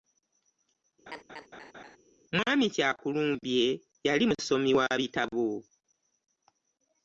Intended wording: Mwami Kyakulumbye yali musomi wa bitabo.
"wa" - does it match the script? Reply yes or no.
yes